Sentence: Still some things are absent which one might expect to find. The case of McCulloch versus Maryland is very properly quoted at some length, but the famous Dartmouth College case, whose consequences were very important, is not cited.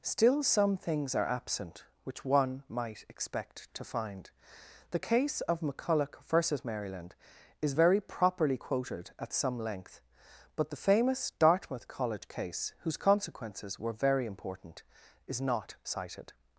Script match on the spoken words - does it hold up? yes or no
yes